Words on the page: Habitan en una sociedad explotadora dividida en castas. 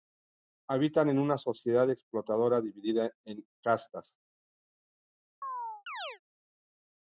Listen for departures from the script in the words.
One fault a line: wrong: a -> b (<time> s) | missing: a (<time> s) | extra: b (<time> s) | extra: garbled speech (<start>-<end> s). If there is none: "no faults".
no faults